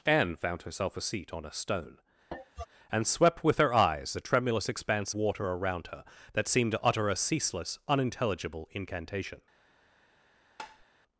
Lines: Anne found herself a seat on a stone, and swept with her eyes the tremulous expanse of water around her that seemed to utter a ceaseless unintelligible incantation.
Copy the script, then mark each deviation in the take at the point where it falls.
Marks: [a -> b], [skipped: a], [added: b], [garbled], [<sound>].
Anne found herself a seat on a stone, [cough] and swept with her eyes the tremulous expanse [skipped: of] water around her that seemed to utter a ceaseless unintelligible incantation. [tap]